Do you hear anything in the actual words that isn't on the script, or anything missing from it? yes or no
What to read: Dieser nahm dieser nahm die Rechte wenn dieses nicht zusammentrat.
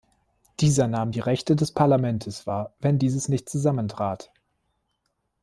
yes